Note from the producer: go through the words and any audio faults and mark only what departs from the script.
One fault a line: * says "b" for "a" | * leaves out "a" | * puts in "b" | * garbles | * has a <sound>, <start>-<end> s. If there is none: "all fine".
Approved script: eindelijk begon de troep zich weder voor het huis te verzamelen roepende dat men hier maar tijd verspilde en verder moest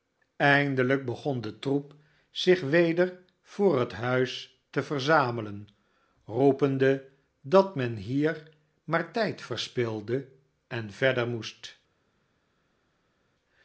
all fine